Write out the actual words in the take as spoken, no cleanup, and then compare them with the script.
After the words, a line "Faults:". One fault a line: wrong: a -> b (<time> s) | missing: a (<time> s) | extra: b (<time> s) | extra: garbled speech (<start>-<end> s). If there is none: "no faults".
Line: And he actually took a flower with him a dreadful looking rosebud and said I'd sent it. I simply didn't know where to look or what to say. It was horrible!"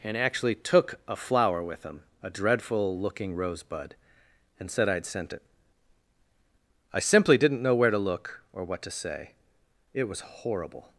And actually took a flower with him a dreadful looking rosebud and said I'd sent it. I simply didn't know where to look or what to say. It was horrible!"
Faults:
missing: he (0.2 s)